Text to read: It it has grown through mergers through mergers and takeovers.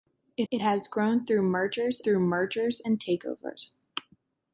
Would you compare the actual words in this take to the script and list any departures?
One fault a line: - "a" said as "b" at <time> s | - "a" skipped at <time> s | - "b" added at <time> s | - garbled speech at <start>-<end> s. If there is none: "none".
none